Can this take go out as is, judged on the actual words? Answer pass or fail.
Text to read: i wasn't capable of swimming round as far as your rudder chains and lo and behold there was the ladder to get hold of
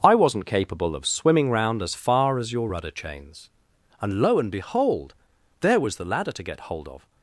pass